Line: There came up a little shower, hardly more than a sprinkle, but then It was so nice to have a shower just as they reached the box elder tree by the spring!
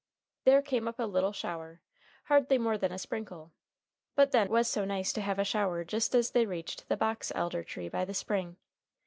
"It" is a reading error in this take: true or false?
true